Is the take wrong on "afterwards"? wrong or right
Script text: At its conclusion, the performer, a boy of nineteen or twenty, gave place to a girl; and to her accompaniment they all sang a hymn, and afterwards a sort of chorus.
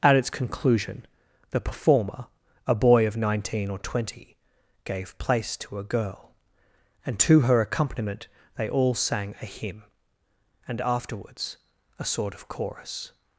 right